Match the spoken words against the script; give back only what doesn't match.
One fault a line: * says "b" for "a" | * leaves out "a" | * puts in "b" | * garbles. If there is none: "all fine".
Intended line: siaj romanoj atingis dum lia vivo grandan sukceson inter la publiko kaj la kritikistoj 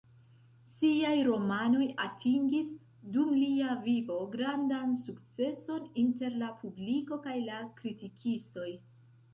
all fine